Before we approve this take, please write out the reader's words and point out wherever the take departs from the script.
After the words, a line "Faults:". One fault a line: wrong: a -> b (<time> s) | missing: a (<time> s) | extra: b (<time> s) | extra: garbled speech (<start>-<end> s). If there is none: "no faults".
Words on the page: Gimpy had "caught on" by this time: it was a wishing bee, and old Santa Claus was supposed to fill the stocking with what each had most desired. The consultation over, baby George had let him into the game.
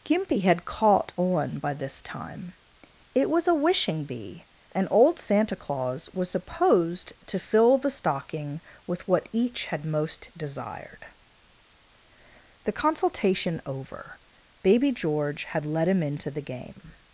Gimpy had "caught on" by this time: it was a wishing bee, and old Santa Claus was supposed to fill the stocking with what each had most desired. The consultation over, baby George had let him into the game.
Faults:
no faults